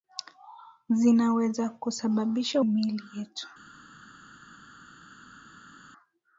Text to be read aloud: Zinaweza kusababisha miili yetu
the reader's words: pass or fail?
pass